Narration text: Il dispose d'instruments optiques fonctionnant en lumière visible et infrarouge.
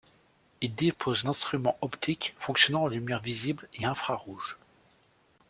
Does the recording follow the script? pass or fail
pass